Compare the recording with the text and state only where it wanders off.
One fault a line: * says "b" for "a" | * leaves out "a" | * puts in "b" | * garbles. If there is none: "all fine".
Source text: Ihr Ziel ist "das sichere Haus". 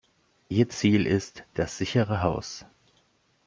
all fine